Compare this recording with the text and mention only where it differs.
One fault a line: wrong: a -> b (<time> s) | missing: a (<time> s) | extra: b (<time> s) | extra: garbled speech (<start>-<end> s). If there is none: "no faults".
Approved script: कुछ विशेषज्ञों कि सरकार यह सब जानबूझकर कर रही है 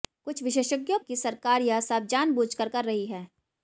no faults